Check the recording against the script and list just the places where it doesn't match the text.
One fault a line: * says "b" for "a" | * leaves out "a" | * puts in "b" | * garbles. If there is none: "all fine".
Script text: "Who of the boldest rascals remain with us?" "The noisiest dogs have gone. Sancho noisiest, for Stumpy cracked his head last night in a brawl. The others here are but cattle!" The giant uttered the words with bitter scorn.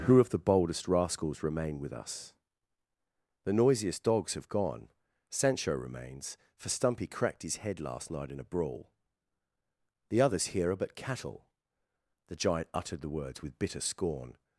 * says "remains" for "noisiest"